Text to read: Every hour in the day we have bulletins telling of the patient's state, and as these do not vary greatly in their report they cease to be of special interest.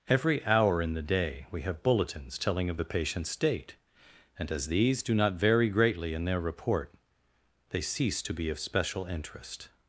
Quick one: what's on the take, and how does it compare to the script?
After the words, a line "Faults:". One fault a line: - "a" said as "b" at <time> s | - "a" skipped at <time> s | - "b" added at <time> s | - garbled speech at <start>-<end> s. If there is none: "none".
Every hour in the day we have bulletins telling of the patient's state, and as these do not vary greatly in their report they cease to be of special interest.
Faults:
none